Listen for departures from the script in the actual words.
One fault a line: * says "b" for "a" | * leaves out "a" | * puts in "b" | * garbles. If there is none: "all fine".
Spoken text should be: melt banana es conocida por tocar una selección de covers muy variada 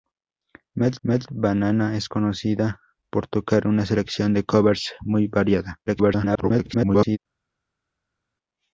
* puts in "melt"
* garbles